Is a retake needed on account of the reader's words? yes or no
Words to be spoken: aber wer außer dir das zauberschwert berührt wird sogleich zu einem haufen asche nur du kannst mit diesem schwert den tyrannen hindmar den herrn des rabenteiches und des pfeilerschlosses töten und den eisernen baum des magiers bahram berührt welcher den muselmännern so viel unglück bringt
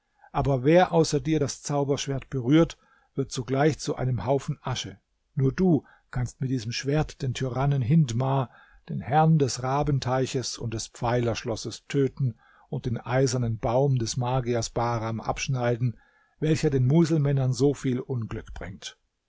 yes